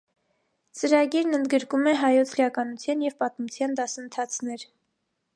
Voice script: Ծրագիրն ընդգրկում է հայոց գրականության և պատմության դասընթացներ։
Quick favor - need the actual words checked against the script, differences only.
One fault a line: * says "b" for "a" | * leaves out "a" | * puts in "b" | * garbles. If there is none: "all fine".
all fine